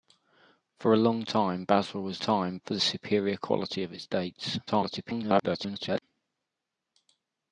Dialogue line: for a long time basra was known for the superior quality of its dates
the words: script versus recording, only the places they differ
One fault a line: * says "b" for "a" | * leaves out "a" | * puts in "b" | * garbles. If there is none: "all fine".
* says "time" for "known"
* garbles